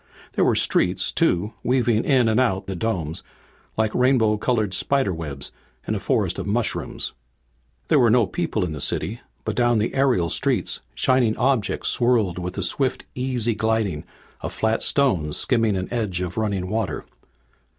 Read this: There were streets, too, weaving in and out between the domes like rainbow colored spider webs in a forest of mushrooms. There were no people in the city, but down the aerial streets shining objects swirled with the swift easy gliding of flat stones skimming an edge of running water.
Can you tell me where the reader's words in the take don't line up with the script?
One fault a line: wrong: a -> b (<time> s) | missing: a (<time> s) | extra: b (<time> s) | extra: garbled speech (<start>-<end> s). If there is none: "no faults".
missing: between (2.7 s)